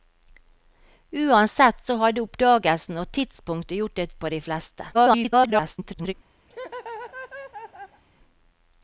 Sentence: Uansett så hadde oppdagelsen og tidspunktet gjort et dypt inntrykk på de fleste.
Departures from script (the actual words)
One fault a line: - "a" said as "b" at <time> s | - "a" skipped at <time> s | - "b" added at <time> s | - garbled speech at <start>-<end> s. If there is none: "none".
- "dypt inntrykk" skipped at 4.2 s
- garbled speech at 4.9-6.1 s